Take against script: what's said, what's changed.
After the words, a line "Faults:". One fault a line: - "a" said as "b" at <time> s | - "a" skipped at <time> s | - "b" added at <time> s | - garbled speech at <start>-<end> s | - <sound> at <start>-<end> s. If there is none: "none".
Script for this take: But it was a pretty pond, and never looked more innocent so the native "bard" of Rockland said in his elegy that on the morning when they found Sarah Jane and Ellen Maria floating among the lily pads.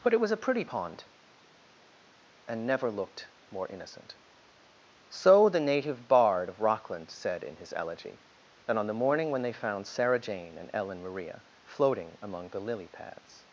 But it was a pretty pond, and never looked more innocent so the native "bard" of Rockland said in his elegy that on the morning when they found Sarah Jane and Ellen Maria floating among the lily pads.
Faults:
none